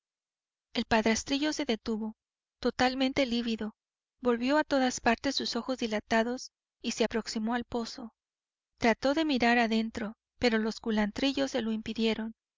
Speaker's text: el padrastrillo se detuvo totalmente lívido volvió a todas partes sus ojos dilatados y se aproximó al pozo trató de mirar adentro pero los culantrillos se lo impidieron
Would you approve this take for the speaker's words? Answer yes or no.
yes